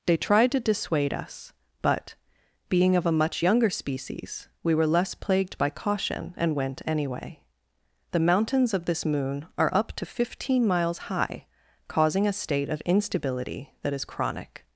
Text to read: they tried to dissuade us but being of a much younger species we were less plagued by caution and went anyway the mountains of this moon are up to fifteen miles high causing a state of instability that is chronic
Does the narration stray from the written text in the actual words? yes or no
no